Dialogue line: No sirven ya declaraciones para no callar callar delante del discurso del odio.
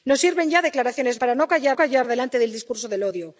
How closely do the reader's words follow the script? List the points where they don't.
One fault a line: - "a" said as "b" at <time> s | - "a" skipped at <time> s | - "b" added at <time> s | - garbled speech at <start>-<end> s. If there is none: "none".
none